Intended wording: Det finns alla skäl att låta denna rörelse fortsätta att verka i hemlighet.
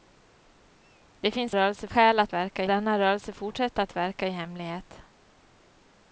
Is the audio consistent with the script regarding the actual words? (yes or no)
no